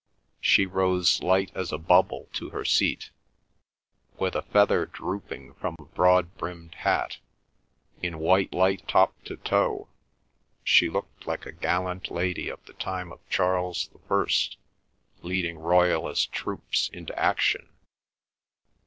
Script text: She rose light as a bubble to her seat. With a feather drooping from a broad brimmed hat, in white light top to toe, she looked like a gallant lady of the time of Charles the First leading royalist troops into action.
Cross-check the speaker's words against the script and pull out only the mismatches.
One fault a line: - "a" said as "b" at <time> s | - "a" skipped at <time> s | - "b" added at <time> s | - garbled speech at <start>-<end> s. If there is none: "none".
none